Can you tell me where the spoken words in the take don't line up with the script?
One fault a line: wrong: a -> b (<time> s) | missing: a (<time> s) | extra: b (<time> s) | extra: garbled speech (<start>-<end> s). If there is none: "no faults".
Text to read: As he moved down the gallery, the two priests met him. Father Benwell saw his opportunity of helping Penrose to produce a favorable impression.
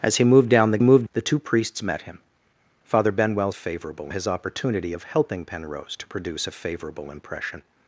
wrong: gallery -> moved (0.8 s)
wrong: saw -> favorable (3.5 s)